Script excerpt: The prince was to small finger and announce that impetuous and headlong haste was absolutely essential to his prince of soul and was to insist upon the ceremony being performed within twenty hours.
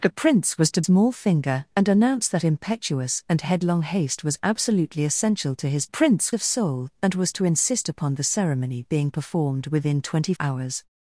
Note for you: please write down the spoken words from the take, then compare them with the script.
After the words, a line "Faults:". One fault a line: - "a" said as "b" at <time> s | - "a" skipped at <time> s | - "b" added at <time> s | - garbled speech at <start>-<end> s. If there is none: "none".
The prince was to small finger and announce that impetuous and headlong haste was absolutely essential to his prince of soul and was to insist upon the ceremony being performed within twenty hours.
Faults:
none